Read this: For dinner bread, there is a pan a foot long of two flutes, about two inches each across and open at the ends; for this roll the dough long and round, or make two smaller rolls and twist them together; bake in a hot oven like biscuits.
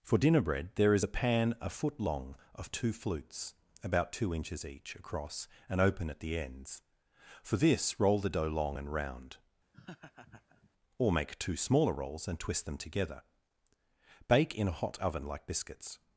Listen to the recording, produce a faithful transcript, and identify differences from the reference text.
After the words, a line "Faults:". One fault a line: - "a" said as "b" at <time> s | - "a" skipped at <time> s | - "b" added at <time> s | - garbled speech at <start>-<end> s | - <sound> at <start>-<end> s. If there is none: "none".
For dinner bread, there is a pan a foot long of two flutes, about two inches each across and open at the ends; for this roll the dough long and round, or make two smaller rolls and twist them together; bake in a hot oven like biscuits.
Faults:
- laugh at 9.7-10.7 s